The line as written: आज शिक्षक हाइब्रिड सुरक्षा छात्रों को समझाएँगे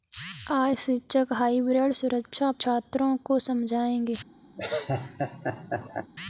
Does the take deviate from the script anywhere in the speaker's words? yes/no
no